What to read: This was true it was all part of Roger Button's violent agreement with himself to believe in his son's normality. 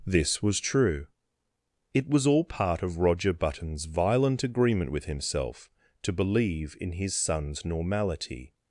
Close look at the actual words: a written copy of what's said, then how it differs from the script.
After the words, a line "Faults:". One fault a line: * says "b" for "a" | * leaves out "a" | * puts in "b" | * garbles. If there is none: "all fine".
This was true it was all part of Roger Button's violent agreement with himself to believe in his son's normality.
Faults:
all fine